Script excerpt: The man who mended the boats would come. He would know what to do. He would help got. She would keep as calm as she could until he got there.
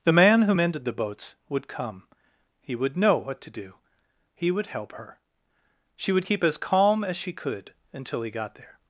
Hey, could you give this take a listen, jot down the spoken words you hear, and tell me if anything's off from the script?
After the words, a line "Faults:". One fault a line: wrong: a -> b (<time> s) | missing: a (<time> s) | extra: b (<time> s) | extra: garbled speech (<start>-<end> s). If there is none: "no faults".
The man who mended the boats would come. He would know what to do. He would help her. She would keep as calm as she could until he got there.
Faults:
wrong: got -> her (4.9 s)